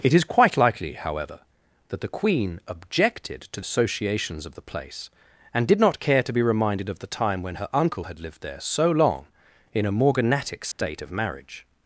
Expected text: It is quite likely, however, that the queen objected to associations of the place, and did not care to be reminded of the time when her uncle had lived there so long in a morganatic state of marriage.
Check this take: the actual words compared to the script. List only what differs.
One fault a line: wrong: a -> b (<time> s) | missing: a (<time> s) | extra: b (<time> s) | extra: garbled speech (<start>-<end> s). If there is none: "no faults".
no faults